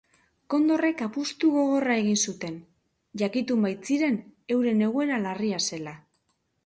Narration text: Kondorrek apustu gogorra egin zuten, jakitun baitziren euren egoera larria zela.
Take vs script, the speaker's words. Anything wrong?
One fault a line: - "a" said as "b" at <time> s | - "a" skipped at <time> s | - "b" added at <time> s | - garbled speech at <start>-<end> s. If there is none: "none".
none